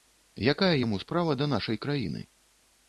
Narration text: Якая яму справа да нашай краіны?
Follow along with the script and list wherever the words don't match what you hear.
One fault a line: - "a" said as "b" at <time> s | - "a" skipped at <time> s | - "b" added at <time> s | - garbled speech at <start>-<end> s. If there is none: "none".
none